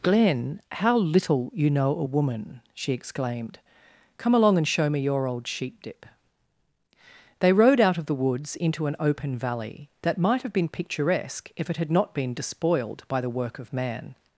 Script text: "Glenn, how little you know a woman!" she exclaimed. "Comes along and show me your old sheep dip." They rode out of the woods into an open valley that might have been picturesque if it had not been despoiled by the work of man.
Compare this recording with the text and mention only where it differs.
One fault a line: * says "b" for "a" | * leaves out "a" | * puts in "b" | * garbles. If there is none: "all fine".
* says "Come" for "Comes"